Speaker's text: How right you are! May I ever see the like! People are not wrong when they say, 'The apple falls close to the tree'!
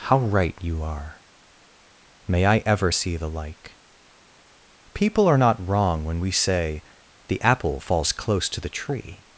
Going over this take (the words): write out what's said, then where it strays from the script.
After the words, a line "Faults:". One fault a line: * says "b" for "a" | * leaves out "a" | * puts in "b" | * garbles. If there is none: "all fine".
How right you are! May I ever see the like! People are not wrong when we say, 'The apple falls close to the tree'!
Faults:
* says "we" for "they"